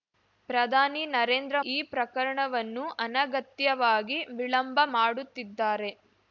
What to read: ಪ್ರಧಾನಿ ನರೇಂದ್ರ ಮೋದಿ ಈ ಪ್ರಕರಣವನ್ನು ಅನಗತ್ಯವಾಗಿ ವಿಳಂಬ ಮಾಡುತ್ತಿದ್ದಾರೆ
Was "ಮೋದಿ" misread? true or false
true